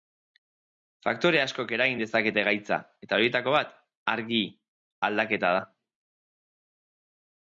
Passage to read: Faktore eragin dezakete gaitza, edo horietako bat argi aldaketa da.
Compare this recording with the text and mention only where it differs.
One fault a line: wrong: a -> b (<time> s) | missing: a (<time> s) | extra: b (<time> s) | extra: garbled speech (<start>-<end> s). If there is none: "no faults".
extra: askok (1.4 s)
wrong: edo -> eta (3.1 s)